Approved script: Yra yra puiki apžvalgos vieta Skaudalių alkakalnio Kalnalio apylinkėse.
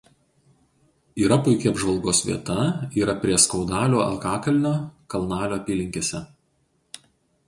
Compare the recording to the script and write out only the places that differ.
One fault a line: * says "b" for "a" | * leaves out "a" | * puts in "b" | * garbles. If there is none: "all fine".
* leaves out "yra"
* puts in "yra prie"